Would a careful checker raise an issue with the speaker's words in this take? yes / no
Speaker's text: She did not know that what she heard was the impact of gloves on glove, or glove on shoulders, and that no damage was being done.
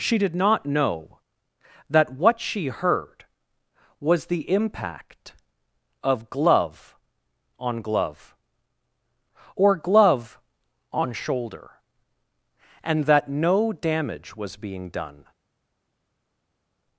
yes